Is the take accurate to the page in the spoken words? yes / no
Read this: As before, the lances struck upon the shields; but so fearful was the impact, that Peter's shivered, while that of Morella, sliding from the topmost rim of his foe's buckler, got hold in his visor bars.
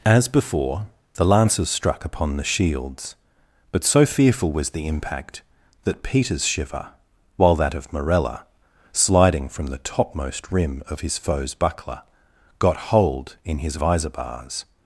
no